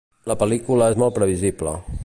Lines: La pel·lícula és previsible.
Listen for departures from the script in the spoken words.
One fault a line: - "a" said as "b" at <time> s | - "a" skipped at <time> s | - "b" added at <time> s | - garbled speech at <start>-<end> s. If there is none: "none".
- "molt" added at 1.0 s